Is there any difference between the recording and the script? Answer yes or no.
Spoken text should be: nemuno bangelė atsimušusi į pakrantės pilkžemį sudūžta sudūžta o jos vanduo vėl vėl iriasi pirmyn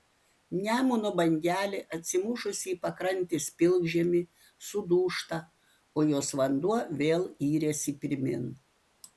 yes